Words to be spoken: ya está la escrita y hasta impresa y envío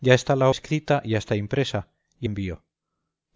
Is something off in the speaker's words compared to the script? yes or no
no